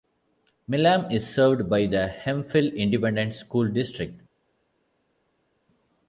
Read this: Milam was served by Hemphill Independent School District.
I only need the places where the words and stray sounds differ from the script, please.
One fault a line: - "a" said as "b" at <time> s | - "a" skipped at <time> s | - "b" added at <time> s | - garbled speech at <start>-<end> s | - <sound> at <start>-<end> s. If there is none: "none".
- "was" said as "is" at 1.1 s
- "the" added at 1.9 s